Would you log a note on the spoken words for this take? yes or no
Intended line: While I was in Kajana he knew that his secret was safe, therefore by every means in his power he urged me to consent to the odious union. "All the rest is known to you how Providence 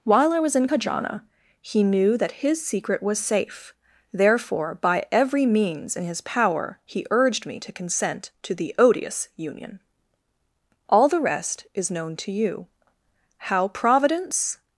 no